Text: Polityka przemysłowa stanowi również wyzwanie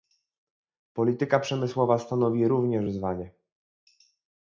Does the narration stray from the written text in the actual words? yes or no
no